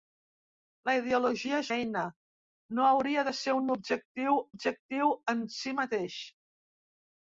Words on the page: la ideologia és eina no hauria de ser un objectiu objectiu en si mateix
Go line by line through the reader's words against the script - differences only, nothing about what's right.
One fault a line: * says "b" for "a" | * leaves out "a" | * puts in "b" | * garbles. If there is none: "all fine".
all fine